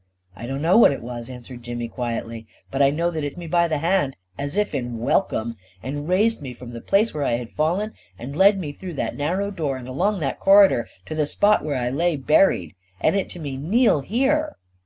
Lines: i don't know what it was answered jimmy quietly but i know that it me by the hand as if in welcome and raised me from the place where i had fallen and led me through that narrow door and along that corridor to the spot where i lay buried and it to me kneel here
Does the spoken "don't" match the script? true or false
true